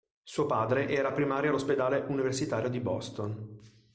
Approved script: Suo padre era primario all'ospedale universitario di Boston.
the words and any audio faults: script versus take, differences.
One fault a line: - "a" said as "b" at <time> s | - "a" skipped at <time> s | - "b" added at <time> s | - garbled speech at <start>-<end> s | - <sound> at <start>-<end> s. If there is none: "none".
none